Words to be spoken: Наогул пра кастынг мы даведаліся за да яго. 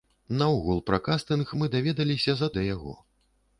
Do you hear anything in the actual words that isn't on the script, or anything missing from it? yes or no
no